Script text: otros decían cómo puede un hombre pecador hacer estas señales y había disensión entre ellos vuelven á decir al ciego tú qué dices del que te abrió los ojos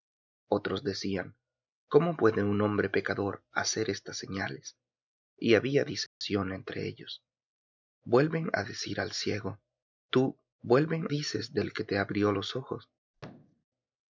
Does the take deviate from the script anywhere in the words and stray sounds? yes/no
yes